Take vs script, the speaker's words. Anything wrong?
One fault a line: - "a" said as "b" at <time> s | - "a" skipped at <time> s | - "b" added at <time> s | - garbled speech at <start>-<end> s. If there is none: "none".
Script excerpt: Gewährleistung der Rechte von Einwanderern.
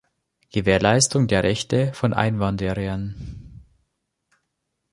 none